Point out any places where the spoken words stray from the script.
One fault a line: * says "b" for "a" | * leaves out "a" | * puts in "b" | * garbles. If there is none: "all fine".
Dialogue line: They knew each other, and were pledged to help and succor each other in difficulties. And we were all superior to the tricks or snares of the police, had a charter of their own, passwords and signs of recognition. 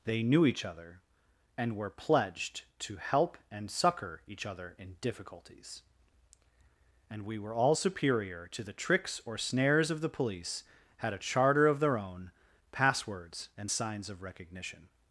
all fine